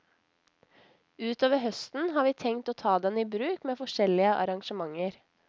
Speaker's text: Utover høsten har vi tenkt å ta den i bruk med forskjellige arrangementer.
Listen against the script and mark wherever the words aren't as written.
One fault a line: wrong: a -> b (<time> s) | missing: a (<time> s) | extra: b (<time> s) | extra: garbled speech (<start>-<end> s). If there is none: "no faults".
no faults